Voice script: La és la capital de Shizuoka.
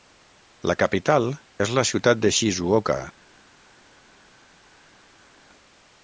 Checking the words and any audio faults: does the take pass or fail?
fail